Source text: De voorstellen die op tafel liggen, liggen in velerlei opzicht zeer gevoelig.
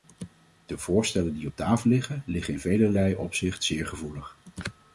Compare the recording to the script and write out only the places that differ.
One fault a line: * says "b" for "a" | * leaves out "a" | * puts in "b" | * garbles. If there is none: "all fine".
all fine